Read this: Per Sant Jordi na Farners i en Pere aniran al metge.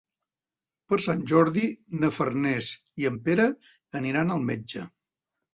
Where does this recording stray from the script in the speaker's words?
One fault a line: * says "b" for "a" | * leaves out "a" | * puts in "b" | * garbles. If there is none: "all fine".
all fine